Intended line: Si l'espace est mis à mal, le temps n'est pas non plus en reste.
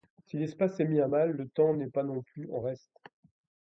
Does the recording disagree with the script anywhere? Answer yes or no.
no